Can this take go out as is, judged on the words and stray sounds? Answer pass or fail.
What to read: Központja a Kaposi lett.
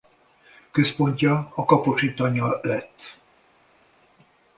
fail